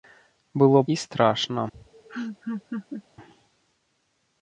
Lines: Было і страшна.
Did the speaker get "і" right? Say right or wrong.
right